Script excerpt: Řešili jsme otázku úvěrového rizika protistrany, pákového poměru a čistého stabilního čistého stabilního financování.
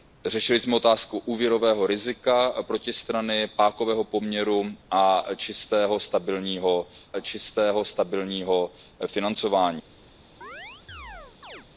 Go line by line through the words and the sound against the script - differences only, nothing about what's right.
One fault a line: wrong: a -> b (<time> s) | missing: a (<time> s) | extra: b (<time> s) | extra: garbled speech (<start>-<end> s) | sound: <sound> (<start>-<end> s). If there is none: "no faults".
sound: chirp (10.4-11.7 s)